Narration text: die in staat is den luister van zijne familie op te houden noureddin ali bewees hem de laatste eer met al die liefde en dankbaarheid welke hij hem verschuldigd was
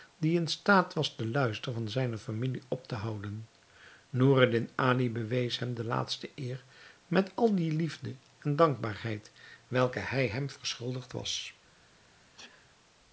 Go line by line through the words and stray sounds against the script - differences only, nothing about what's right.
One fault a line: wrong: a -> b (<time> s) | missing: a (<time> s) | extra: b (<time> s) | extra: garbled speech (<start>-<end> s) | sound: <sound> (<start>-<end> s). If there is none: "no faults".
wrong: is -> was (0.9 s)
sound: sneeze (12.4-12.7 s)